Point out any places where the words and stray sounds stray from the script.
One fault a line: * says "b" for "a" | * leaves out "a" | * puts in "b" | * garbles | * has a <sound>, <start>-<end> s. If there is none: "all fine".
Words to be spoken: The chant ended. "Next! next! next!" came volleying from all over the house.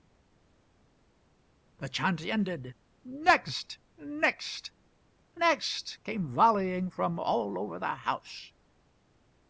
all fine